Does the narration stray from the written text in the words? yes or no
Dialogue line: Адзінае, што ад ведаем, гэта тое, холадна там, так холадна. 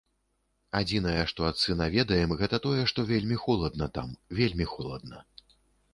yes